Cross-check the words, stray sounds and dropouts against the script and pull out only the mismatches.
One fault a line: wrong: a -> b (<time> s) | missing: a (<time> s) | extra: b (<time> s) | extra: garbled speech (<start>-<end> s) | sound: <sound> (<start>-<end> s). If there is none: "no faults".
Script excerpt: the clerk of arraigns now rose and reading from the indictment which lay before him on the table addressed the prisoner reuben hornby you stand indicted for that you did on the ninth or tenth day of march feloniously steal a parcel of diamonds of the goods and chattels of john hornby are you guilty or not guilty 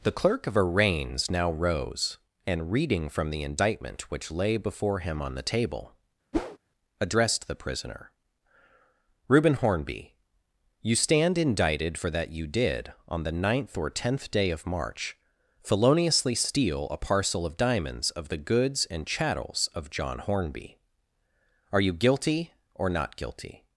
sound: whoosh (6.3-6.6 s)